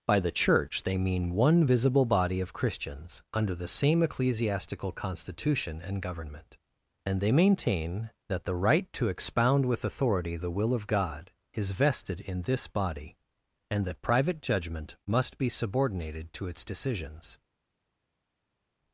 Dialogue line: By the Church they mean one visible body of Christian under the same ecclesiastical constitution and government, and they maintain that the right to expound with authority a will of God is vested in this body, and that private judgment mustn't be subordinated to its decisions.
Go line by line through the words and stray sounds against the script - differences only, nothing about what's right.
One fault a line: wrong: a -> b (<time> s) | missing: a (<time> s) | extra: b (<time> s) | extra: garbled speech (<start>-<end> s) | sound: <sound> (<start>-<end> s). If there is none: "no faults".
wrong: Christian -> Christians (2.5 s)
wrong: a -> the (10.4 s)
wrong: mustn't -> must (15.1 s)